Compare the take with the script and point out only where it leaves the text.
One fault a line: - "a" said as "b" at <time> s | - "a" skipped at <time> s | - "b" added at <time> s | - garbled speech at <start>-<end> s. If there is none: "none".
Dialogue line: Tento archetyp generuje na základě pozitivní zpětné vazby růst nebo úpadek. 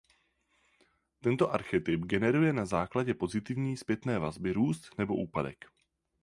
none